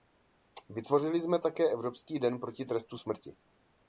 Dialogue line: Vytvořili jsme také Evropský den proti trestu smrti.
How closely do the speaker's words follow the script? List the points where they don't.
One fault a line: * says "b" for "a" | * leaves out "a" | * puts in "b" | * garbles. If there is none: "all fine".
all fine